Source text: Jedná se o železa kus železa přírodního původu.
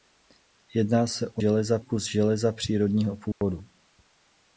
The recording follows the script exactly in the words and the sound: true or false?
false